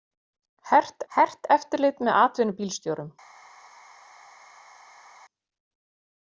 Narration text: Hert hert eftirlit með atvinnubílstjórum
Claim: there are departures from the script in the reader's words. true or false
false